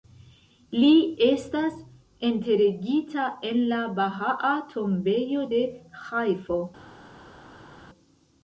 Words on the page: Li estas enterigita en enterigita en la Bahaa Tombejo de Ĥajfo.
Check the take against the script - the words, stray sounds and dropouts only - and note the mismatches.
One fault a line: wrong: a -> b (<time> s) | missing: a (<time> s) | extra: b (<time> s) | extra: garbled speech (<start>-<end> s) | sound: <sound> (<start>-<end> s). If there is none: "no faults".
missing: enterigita en (3.6 s)